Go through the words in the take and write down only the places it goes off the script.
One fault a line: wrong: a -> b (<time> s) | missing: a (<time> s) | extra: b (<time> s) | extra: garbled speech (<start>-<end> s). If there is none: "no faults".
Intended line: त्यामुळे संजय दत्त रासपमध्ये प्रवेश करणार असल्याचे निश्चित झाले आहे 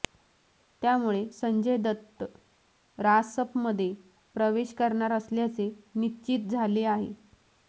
no faults